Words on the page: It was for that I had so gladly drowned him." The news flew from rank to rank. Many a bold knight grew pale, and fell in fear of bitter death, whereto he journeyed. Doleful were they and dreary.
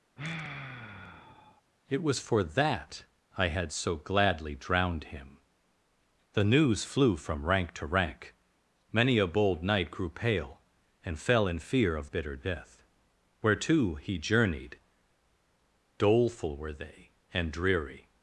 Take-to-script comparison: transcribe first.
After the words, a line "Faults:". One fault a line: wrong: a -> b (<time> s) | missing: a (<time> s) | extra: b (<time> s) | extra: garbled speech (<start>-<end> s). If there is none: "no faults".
It was for that I had so gladly drowned him." The news flew from rank to rank. Many a bold knight grew pale, and fell in fear of bitter death, whereto he journeyed. Doleful were they and dreary.
Faults:
no faults